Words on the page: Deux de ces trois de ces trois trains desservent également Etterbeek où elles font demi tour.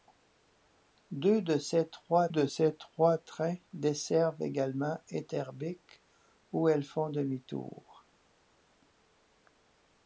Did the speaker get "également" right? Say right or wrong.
right